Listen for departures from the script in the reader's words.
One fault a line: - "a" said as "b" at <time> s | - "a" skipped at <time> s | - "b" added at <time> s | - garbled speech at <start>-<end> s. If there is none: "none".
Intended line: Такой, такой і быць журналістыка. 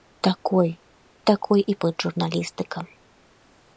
none